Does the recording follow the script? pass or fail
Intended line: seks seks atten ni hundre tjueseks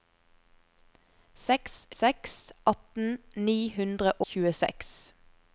pass